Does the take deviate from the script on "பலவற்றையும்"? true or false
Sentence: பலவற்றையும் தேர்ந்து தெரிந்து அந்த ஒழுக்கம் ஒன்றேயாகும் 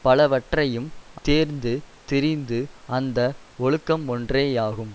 false